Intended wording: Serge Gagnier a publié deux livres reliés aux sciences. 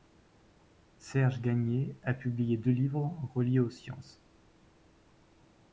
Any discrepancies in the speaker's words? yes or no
no